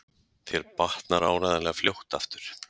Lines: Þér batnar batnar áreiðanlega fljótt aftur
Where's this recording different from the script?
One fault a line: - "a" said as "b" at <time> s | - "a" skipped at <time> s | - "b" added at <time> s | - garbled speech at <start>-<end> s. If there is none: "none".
- "batnar" skipped at 1.3 s